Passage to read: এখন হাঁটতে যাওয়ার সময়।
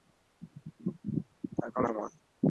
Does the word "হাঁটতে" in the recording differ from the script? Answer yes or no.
yes